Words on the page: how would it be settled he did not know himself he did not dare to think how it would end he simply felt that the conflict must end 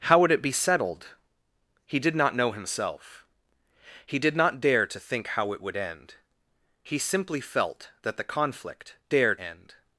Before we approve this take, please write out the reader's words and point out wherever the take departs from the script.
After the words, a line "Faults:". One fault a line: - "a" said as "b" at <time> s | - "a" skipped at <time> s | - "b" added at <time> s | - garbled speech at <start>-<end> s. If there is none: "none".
how would it be settled he did not know himself he did not dare to think how it would end he simply felt that the conflict dare end
Faults:
- "must" said as "dare" at 9.1 s